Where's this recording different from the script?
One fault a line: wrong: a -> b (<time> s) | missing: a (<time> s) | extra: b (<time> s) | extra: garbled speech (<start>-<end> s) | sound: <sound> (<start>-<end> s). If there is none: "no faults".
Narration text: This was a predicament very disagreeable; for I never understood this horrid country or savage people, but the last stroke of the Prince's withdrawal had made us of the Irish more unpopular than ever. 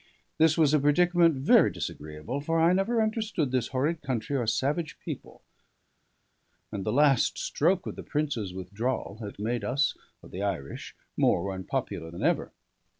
wrong: but -> and (6.7 s)